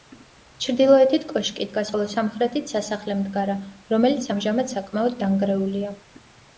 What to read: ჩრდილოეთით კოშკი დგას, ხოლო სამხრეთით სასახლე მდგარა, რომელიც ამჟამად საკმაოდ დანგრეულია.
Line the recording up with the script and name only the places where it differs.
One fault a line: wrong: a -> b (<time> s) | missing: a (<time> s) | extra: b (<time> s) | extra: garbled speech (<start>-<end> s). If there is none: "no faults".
no faults